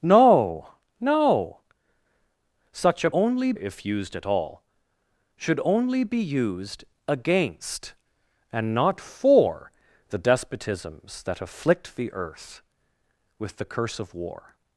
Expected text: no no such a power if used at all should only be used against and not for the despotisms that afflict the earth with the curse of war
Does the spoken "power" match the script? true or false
false